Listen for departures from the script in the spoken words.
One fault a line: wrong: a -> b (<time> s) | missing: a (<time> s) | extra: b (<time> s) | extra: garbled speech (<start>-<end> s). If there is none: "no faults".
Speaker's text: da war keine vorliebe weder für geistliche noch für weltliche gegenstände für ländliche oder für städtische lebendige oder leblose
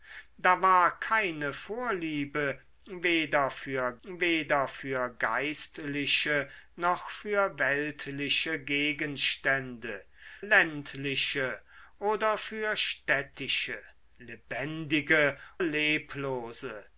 extra: weder für (4.0 s)
missing: für (10.0 s)
missing: oder (15.4 s)